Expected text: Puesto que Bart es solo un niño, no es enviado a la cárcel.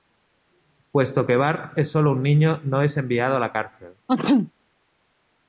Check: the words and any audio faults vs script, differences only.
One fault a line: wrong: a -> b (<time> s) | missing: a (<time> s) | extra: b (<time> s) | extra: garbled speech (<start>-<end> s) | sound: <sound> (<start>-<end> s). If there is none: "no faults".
sound: sneeze (4.1-4.5 s)